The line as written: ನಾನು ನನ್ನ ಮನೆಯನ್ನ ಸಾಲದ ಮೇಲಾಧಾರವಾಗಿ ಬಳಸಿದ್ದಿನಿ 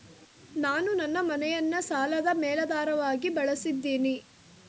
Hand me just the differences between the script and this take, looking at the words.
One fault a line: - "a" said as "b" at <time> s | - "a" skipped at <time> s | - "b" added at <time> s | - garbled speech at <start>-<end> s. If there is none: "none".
none